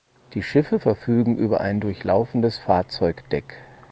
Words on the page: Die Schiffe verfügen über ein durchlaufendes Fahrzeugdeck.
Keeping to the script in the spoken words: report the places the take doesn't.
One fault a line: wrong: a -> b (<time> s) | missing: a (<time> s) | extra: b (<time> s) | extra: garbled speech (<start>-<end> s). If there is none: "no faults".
no faults